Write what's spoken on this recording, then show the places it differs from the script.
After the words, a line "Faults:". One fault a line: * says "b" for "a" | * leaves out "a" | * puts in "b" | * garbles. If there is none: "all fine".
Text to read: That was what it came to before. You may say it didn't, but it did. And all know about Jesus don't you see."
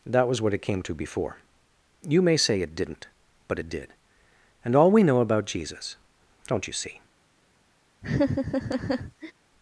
That was what it came to before. You may say it didn't, but it did. And all we know about Jesus don't you see."
Faults:
* puts in "we"